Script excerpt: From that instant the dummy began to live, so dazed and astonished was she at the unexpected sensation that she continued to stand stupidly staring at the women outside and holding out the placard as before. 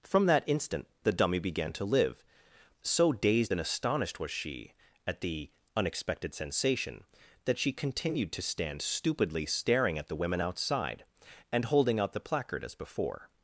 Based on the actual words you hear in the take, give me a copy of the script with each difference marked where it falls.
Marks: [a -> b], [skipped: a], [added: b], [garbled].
From that instant the dummy began to live, so dazed and astonished was she at the unexpected sensation that she continued to stand stupidly staring at the women outside and holding out the placard as before.